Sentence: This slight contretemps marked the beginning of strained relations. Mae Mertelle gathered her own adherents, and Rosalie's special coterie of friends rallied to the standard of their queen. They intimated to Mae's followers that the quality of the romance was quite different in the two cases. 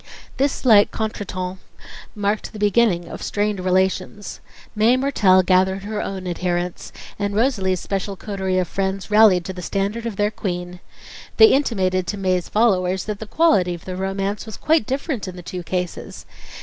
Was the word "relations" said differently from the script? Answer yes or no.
no